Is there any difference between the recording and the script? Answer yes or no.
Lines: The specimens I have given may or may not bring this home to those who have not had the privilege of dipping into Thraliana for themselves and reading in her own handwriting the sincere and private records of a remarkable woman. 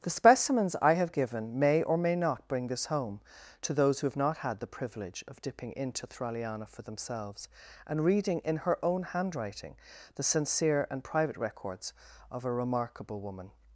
no